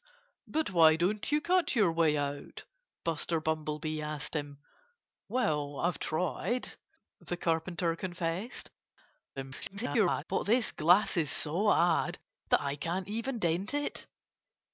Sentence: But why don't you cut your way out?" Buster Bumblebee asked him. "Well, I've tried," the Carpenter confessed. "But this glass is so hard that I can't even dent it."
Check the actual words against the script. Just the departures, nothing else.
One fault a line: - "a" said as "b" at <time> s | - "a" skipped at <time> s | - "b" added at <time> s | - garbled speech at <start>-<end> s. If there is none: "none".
- garbled speech at 9.4-10.2 s